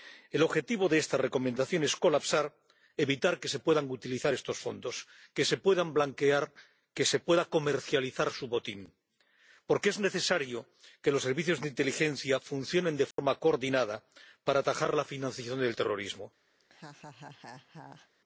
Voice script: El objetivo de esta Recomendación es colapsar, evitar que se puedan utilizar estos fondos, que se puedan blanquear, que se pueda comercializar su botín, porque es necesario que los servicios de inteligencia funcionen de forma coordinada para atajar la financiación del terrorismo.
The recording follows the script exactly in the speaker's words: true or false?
true